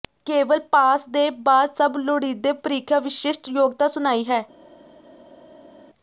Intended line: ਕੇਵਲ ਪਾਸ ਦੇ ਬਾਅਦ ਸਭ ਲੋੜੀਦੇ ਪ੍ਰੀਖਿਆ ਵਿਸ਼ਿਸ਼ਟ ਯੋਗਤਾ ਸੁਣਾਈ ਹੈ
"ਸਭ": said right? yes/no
yes